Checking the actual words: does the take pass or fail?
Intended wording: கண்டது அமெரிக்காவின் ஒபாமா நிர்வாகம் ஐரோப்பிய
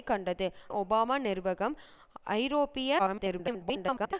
fail